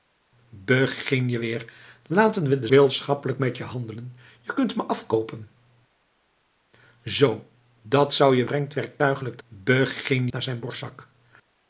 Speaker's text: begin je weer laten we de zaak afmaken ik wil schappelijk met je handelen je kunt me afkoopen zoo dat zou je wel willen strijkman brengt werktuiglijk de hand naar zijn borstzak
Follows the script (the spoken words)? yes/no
no